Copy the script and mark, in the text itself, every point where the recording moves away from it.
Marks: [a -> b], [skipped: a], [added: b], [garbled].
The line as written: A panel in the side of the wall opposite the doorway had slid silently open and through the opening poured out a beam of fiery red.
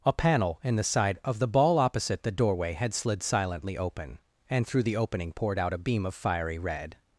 A panel in the side of the [wall -> ball] opposite the doorway had slid silently open and through the opening poured out a beam of fiery red.